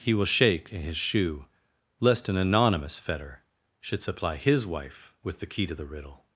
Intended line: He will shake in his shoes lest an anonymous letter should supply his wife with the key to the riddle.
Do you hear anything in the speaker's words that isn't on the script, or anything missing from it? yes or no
yes